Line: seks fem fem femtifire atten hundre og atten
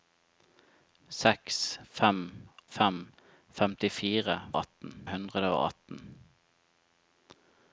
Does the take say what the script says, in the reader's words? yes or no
yes